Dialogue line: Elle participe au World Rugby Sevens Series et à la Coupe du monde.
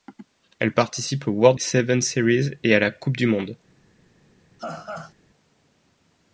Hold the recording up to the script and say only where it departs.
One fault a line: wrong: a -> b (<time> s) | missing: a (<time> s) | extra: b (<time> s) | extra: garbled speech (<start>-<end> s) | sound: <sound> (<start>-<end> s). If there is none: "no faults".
missing: Rugby (1.6 s)
sound: laugh (4.6-5.1 s)